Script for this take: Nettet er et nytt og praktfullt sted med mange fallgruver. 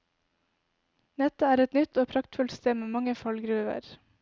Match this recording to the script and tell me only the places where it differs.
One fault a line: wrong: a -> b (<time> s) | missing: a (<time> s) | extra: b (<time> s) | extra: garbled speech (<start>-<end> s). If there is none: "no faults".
no faults